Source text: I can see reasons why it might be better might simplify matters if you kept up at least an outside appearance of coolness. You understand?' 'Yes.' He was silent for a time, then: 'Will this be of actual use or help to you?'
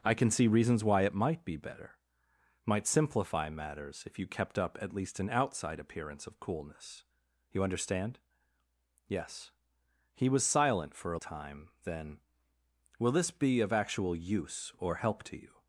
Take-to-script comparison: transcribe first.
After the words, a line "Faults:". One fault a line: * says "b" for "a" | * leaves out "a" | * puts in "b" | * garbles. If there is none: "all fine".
I can see reasons why it might be better might simplify matters if you kept up at least an outside appearance of coolness. You understand?' 'Yes.' He was silent for a time, then: 'Will this be of actual use or help to you?'
Faults:
all fine